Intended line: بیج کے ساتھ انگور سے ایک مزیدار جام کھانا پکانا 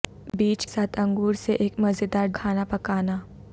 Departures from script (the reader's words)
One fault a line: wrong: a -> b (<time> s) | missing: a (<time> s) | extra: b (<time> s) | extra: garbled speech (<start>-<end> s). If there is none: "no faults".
missing: کے (0.7 s)
missing: جام (2.3 s)